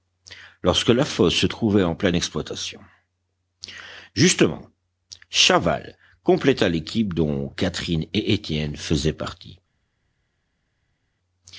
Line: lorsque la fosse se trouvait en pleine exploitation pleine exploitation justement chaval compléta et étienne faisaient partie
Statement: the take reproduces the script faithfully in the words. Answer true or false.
false